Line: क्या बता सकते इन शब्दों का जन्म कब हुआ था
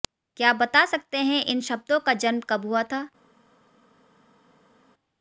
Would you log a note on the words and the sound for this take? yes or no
yes